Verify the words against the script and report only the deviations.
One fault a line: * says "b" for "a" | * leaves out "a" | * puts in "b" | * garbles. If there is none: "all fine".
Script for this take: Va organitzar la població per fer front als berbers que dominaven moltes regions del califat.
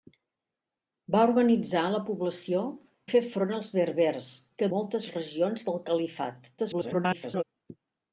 * leaves out "per"
* leaves out "dominaven"
* garbles